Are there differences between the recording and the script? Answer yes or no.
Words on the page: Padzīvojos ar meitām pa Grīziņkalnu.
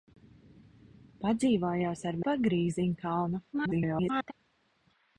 yes